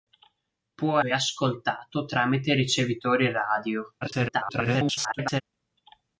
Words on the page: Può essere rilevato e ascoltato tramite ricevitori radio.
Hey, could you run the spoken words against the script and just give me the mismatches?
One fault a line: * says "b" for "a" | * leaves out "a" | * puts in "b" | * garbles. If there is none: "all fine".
* leaves out "essere rilevato"
* garbles